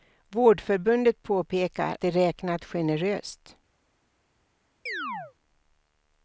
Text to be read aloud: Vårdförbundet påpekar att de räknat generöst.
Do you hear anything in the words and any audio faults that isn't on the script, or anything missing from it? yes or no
yes